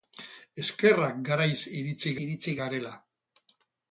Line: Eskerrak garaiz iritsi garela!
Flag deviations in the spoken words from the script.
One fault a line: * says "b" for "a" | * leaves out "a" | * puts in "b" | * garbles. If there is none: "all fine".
* puts in "iritsi"